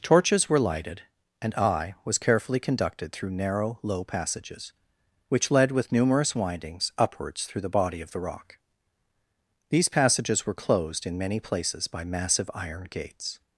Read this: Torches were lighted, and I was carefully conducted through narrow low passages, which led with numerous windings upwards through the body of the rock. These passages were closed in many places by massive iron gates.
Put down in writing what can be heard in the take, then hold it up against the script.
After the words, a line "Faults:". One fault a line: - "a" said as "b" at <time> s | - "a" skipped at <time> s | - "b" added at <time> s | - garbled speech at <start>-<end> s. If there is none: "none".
Torches were lighted, and I was carefully conducted through narrow low passages, which led with numerous windings upwards through the body of the rock. These passages were closed in many places by massive iron gates.
Faults:
none